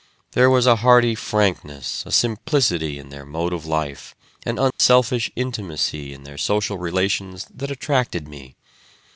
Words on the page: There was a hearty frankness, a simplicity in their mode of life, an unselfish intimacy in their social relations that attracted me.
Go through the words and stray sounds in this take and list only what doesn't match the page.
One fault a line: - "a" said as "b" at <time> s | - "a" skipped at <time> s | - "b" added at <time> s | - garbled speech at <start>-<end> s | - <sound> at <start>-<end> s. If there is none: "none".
- dropout at 4.7-4.8 s